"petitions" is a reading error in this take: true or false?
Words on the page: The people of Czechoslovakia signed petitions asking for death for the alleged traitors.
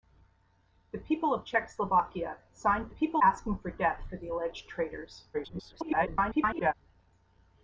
true